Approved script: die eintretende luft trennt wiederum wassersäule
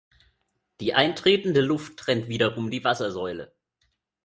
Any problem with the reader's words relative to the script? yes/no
yes